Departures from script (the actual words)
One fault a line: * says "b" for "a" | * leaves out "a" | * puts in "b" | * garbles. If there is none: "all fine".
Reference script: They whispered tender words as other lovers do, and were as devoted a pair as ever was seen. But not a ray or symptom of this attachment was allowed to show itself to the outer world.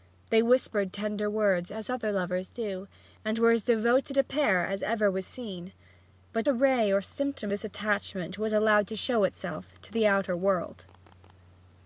* leaves out "not"
* leaves out "of"